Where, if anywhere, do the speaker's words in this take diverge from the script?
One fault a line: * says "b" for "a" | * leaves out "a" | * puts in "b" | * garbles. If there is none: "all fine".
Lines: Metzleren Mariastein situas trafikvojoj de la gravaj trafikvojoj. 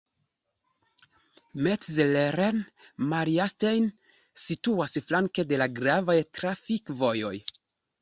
* says "flanke" for "trafikvojoj"